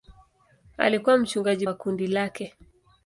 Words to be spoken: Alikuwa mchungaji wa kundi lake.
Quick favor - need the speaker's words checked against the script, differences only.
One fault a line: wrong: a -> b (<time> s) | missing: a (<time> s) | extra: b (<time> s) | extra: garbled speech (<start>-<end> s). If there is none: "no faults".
no faults